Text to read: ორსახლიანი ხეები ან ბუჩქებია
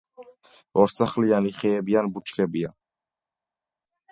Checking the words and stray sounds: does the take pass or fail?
pass